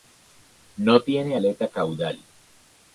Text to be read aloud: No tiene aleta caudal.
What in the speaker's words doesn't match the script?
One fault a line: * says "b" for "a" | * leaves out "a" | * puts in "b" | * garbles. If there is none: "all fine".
all fine